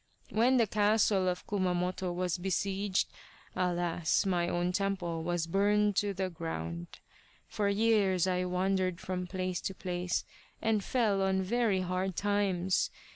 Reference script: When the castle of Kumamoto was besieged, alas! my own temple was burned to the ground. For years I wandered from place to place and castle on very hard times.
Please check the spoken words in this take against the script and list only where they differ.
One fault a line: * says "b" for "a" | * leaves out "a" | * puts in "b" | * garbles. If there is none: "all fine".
* says "fell" for "castle"